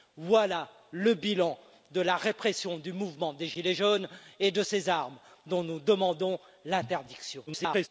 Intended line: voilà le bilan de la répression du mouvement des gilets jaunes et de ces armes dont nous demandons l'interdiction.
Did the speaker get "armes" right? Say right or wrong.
right